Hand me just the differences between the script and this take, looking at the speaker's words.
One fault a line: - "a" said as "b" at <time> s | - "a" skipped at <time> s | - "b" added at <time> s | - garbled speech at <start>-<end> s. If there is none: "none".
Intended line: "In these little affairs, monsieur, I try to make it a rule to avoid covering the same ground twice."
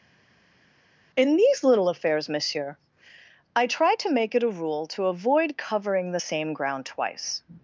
none